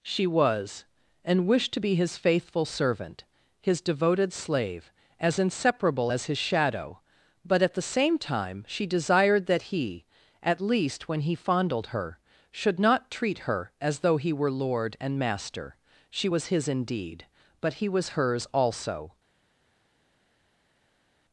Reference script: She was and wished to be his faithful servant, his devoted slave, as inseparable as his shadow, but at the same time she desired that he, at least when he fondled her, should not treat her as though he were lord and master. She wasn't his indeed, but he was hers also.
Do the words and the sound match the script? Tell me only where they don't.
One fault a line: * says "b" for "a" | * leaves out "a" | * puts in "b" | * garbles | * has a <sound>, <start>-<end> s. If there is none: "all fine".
* says "was" for "wasn't"